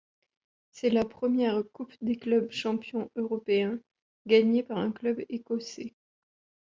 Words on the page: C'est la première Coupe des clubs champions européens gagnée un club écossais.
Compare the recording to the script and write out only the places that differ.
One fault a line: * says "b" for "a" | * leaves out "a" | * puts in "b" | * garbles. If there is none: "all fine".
* puts in "par"